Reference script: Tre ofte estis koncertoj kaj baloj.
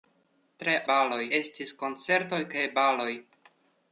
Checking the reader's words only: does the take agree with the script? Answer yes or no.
no